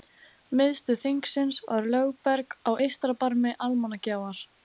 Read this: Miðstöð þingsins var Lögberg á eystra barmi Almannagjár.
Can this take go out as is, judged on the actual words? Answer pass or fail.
pass